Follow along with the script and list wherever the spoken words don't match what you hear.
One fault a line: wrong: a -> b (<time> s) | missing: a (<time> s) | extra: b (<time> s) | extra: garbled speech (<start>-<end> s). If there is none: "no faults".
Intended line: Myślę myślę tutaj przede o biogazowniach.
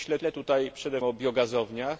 no faults